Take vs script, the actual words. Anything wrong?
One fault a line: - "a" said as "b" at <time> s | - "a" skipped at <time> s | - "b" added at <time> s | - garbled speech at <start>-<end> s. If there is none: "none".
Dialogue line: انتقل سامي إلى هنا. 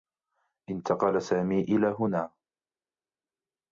none